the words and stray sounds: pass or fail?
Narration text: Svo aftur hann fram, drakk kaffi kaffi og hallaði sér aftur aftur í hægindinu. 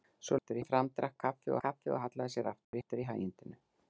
fail